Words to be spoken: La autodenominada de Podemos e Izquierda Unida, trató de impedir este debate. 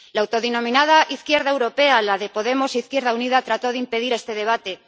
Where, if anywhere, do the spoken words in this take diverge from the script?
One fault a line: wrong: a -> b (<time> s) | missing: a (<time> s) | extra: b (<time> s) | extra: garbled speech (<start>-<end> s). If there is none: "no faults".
extra: izquierda europea la (1.1 s)